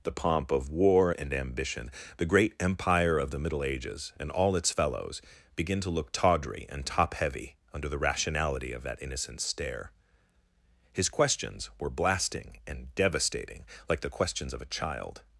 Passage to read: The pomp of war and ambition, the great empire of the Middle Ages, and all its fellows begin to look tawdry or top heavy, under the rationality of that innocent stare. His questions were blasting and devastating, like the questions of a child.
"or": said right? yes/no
no